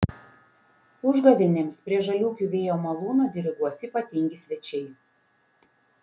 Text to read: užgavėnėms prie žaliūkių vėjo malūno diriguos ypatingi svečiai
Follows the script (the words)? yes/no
yes